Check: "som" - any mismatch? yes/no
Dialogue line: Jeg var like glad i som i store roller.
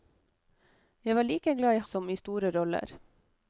no